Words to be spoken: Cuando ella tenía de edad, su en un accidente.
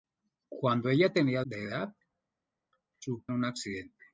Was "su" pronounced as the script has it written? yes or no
yes